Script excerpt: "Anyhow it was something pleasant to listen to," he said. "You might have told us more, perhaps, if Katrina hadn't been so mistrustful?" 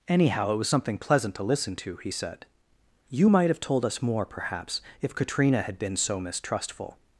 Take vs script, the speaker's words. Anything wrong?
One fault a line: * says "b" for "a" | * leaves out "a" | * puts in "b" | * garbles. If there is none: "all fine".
* says "had" for "hadn't"